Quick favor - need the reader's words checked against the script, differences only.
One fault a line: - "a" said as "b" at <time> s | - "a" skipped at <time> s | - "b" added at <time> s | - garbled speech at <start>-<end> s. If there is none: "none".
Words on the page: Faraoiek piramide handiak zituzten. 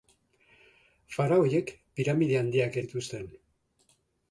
none